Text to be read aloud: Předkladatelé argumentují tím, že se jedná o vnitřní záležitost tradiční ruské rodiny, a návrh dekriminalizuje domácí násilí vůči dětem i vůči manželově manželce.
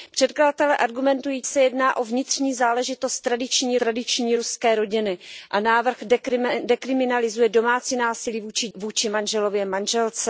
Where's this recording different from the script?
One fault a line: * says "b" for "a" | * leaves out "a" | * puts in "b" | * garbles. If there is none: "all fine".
* leaves out "tím že"
* puts in "tradiční"
* leaves out "dětem i"